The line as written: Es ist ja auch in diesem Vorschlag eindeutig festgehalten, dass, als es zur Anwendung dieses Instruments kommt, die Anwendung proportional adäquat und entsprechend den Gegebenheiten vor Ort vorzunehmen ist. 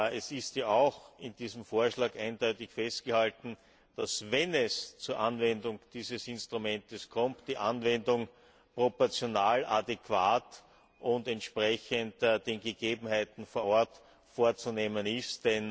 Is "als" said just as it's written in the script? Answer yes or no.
no